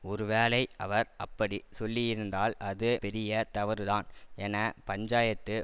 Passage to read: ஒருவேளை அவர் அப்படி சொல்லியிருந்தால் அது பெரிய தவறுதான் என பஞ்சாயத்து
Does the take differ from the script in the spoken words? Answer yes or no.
no